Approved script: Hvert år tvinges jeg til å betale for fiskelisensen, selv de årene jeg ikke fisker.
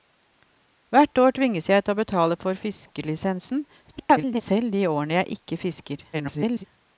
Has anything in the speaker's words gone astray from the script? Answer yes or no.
yes